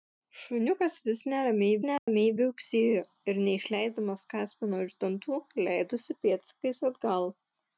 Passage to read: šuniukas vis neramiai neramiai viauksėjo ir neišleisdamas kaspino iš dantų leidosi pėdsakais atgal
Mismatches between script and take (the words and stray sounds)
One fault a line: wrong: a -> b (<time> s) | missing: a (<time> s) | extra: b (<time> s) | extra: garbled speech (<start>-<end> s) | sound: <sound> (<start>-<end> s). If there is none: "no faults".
sound: dropout (2.0-2.1 s)